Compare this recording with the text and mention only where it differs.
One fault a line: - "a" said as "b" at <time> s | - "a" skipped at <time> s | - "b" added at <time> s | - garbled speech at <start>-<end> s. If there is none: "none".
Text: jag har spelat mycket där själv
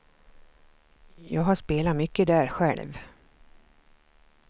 none